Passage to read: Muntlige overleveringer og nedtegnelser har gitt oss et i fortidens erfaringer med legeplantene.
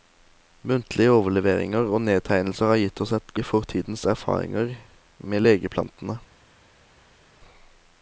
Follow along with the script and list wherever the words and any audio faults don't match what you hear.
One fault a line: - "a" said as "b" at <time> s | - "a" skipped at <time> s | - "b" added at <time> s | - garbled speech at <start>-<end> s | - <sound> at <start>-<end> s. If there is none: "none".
none